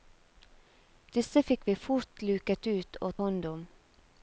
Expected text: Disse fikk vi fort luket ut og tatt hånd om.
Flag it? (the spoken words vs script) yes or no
yes